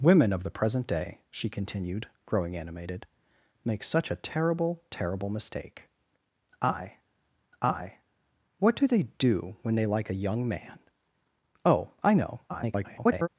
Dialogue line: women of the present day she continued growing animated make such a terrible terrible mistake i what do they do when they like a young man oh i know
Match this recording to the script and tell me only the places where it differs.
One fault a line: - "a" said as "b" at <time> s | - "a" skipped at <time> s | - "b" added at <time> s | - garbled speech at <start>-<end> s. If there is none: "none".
- "i" added at 7.6 s
- garbled speech at 12.5-13.3 s